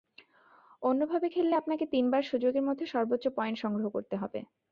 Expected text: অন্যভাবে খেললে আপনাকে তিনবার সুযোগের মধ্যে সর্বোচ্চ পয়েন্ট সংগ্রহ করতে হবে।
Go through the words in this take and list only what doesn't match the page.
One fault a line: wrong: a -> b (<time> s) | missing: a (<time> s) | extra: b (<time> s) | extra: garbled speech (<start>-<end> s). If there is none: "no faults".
no faults